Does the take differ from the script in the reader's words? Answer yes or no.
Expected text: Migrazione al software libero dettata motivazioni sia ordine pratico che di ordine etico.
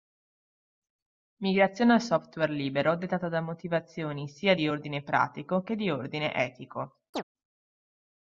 yes